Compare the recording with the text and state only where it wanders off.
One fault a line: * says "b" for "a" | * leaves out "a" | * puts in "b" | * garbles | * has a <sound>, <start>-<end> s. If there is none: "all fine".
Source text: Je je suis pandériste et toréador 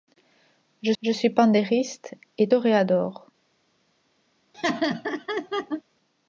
* has a laugh, 4.5-5.8 s